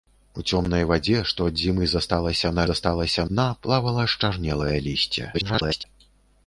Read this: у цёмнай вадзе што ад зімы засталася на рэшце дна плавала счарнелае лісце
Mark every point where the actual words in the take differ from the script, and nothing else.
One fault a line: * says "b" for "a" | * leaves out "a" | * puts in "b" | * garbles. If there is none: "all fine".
* says "засталася" for "рэшце"
* garbles